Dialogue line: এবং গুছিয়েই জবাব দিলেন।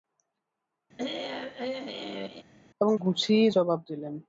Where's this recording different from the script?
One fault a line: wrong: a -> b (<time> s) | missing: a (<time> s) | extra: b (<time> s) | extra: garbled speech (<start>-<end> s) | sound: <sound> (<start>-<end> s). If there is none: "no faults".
sound: throat clearing (1.0-2.4 s)